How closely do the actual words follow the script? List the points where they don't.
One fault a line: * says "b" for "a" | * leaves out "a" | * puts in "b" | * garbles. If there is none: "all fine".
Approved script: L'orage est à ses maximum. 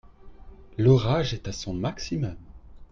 * says "son" for "ses"